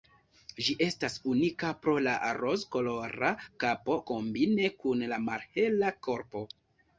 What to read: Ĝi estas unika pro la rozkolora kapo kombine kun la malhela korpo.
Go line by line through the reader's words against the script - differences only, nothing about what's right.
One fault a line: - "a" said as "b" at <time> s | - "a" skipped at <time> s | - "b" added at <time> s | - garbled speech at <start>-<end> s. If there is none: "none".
none